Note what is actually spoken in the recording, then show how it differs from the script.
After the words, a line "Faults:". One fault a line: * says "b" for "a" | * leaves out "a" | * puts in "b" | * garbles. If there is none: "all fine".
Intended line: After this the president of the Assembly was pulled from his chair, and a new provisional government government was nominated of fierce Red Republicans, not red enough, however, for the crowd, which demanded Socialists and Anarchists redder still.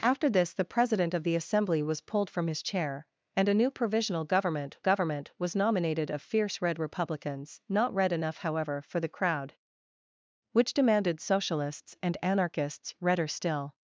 After this the president of the Assembly was pulled from his chair, and a new provisional government government was nominated of fierce Red Republicans, not red enough, however, for the crowd, which demanded Socialists and Anarchists redder still.
Faults:
all fine